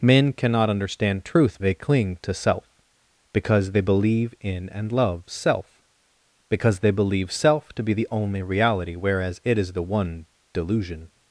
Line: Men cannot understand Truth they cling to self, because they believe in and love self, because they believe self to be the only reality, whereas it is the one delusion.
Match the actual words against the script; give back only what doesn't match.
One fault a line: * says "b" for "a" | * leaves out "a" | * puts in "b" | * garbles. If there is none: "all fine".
all fine